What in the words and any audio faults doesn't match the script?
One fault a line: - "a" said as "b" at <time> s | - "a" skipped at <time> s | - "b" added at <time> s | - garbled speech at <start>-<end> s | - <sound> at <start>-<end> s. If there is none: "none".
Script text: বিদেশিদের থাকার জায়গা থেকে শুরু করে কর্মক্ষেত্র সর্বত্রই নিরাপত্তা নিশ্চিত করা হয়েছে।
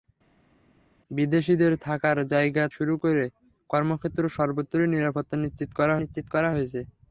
- "থেকে" skipped at 2.6 s
- "নিশ্চিত করা" added at 6.0 s